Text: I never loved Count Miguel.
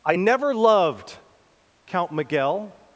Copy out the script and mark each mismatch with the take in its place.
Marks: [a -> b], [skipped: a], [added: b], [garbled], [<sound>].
I never loved Count Miguel.